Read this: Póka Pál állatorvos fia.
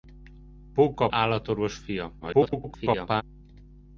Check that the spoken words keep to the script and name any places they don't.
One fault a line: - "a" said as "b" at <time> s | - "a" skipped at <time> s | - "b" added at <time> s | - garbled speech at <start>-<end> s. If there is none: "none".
- "Pál" skipped at 1.1 s
- garbled speech at 2.2-3.2 s